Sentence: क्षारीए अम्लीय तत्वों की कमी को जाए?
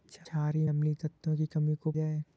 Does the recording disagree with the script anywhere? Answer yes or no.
no